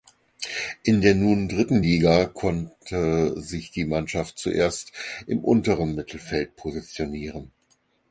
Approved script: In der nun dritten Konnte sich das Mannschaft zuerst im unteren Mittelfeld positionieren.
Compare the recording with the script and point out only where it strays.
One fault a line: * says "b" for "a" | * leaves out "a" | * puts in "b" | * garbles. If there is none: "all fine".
* puts in "Liga"
* says "die" for "das"